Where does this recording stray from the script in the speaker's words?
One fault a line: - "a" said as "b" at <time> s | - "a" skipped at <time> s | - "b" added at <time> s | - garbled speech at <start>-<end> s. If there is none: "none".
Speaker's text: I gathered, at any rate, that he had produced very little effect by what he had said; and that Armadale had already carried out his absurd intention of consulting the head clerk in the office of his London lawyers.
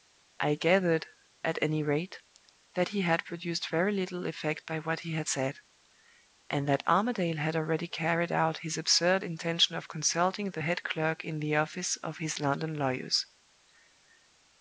none